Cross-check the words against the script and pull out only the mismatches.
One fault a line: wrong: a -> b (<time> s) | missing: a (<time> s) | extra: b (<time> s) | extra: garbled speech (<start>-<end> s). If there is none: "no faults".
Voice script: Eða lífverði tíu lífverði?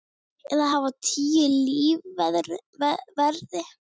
wrong: lífverði -> hafa (0.7 s)